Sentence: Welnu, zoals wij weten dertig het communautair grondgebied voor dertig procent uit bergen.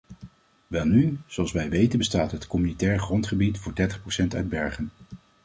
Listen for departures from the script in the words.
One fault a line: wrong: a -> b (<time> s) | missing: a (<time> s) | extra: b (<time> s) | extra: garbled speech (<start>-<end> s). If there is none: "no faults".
wrong: dertig -> bestaat (2.0 s)